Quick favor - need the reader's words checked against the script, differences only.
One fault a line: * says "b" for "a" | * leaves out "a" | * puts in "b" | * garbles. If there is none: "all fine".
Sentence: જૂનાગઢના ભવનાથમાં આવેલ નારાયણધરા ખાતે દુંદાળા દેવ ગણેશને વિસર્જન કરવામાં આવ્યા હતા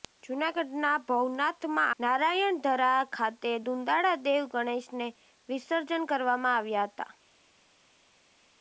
* leaves out "આવેલ"